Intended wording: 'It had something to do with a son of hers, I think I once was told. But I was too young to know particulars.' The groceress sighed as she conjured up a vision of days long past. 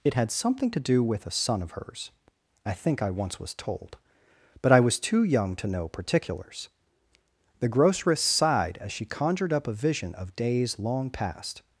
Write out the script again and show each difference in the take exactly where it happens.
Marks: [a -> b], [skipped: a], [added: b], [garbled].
'It had something to do with a son of hers, I think I once was told. But I was too young to know particulars.' The groceress sighed as she conjured up a vision of days long past.